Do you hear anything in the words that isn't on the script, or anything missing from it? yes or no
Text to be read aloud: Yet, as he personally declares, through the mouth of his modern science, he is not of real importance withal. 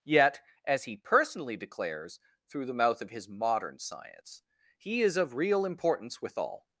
yes